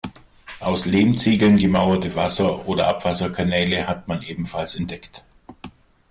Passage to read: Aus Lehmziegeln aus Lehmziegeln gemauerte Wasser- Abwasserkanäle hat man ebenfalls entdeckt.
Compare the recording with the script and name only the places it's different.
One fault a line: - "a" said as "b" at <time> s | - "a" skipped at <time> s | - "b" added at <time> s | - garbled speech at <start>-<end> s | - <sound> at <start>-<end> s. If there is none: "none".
- "aus Lehmziegeln" skipped at 1.6 s
- "oder" added at 2.7 s